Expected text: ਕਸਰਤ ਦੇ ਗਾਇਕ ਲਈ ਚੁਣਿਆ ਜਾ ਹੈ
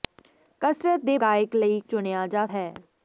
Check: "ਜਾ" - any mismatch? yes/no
no